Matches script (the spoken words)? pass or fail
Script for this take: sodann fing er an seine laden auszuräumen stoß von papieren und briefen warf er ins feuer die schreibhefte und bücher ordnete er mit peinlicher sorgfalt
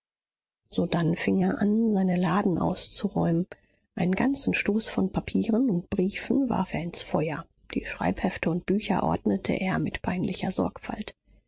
fail